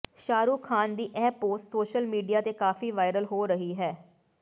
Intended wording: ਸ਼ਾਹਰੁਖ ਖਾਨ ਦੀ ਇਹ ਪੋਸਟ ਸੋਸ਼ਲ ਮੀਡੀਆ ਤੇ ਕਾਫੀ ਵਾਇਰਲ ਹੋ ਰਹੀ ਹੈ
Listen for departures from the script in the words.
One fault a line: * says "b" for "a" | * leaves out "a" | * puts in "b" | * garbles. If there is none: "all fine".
all fine